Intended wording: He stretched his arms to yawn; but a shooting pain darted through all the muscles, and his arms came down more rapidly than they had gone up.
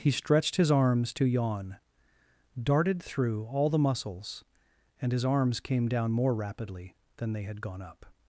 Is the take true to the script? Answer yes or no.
no